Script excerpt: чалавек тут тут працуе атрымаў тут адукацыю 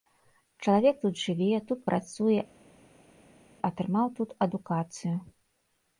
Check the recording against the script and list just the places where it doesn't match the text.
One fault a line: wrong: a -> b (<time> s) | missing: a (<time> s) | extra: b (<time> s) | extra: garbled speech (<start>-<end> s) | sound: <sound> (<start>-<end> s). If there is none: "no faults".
extra: жыве (1.2 s)